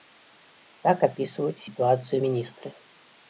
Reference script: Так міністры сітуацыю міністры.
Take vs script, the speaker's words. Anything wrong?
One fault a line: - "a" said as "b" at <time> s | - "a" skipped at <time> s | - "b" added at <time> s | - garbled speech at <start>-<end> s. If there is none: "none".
- "міністры" said as "апісваюць" at 1.1 s